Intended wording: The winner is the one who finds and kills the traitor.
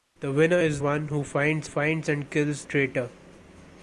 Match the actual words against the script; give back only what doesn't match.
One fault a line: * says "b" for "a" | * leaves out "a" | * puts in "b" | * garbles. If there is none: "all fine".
* leaves out "the"
* puts in "finds"
* leaves out "the"